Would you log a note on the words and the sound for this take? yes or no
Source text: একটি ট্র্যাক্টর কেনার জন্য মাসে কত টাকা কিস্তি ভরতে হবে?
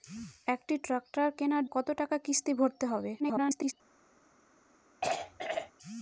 yes